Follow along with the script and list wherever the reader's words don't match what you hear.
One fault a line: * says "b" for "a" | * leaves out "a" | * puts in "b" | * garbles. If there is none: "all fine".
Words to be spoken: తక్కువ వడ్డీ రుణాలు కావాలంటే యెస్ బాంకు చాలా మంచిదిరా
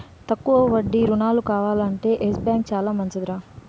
all fine